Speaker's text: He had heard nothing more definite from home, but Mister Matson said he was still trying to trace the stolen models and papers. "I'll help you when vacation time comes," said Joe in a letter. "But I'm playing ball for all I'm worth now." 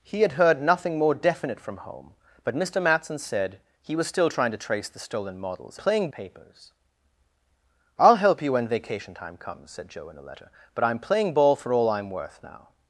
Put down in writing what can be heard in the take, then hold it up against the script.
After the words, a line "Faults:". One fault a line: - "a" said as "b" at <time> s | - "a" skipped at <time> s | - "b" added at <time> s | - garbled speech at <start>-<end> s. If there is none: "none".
He had heard nothing more definite from home, but Mister Matson said he was still trying to trace the stolen models playing papers. "I'll help you when vacation time comes," said Joe in a letter. "But I'm playing ball for all I'm worth now."
Faults:
- "and" said as "playing" at 5.7 s